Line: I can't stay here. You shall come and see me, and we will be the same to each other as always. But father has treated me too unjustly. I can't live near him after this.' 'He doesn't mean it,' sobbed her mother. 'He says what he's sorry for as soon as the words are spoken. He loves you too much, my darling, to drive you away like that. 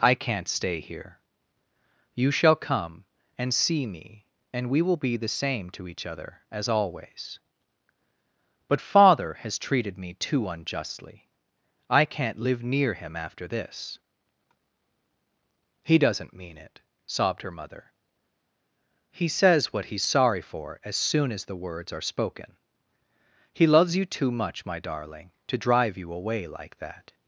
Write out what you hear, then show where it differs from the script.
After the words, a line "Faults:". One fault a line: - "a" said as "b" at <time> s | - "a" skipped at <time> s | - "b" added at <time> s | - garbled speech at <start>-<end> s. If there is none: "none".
I can't stay here. You shall come and see me, and we will be the same to each other as always. But father has treated me too unjustly. I can't live near him after this.' 'He doesn't mean it,' sobbed her mother. 'He says what he's sorry for as soon as the words are spoken. He loves you too much, my darling, to drive you away like that.
Faults:
none